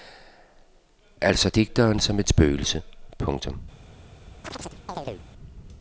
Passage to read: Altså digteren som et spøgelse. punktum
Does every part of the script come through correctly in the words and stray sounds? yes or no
no